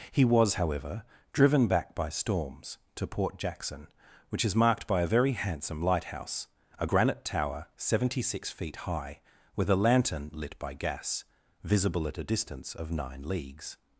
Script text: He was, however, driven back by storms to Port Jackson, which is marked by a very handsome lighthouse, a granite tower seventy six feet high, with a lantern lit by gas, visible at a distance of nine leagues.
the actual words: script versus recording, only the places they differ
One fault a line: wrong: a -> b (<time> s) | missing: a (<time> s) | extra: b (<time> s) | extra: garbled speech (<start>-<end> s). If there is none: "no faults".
no faults